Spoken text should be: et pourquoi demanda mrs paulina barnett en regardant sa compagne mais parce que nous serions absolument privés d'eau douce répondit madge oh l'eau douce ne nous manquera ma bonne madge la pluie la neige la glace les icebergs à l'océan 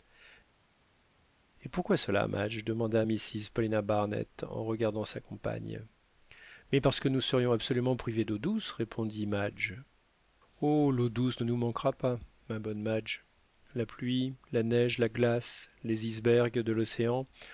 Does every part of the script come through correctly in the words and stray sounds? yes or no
no